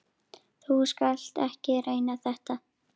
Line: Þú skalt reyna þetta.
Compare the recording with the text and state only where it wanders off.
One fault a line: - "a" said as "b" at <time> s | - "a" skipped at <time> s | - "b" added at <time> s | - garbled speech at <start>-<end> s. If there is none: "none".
- "ekki" added at 1.5 s